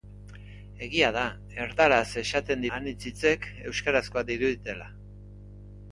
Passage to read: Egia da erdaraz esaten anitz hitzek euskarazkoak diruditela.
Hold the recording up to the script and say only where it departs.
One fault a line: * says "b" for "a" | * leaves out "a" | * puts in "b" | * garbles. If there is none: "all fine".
all fine